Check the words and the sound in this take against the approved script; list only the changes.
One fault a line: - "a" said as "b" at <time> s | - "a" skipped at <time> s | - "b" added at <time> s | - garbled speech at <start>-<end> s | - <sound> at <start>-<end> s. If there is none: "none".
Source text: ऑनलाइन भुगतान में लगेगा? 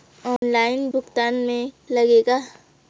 - dropout at 0.4-0.4 s